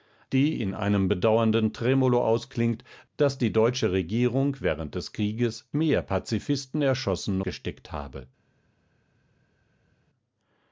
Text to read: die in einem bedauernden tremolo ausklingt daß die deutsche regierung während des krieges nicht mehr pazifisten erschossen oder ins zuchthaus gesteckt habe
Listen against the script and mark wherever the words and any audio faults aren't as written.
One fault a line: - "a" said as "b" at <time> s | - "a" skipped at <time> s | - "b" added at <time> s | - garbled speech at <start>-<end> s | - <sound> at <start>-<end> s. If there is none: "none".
- "nicht" skipped at 5.7 s
- "oder ins zuchthaus" skipped at 7.4 s